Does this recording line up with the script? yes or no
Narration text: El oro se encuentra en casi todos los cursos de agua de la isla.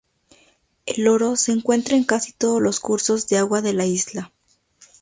yes